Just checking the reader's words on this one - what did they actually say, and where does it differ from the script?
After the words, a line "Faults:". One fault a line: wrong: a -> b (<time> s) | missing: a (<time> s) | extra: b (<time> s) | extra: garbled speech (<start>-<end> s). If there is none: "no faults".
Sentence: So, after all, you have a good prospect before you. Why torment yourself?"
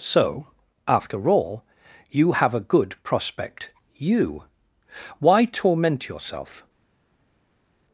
So, after all, you have a good prospect you. Why torment yourself?"
Faults:
missing: before (3.7 s)